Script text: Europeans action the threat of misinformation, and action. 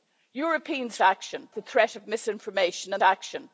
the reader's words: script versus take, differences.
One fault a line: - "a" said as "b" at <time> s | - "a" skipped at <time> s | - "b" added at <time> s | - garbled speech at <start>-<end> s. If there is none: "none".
none